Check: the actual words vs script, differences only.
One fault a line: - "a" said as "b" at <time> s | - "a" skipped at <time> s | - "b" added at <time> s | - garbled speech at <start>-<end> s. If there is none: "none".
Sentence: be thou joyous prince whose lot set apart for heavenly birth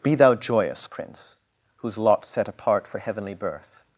none